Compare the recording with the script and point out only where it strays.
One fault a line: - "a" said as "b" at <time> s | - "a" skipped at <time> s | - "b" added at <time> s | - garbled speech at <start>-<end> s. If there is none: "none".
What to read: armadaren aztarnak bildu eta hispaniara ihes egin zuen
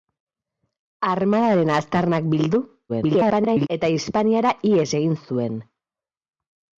- garbled speech at 2.9-3.7 s